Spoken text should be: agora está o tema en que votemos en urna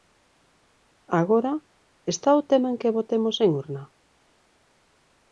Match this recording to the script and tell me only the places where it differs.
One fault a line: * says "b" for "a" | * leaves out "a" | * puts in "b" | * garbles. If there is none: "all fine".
all fine